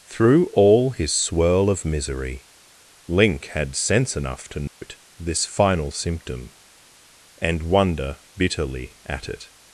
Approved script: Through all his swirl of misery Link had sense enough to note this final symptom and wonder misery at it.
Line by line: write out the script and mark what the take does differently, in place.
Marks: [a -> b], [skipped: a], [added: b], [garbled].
Through all his swirl of misery Link had sense enough to note this final symptom and wonder [misery -> bitterly] at it.